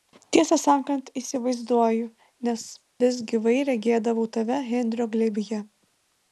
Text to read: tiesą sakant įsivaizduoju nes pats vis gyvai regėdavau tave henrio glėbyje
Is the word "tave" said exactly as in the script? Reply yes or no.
yes